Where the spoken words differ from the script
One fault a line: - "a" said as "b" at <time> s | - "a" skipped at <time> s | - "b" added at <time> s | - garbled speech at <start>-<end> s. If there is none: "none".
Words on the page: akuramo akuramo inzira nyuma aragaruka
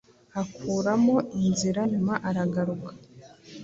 - "akuramo" skipped at 1.1 s